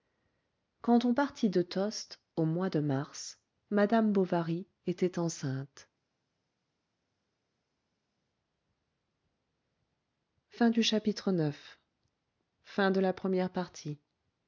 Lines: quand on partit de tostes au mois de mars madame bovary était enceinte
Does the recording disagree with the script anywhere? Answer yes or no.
no